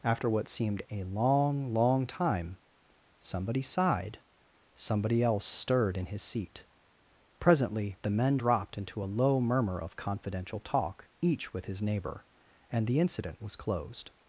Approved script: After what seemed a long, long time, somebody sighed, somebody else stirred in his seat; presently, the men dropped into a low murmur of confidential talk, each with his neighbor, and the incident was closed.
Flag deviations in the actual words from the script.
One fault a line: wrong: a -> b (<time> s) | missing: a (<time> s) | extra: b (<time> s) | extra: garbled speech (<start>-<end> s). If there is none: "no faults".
no faults